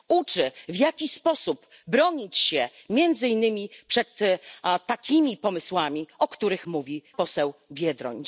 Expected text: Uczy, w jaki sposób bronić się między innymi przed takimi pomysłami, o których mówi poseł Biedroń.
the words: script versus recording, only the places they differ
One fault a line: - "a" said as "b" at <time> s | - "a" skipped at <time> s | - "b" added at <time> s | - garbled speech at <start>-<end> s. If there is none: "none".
none